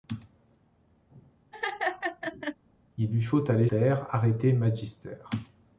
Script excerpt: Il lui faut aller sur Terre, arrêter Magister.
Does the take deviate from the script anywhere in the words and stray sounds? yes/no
yes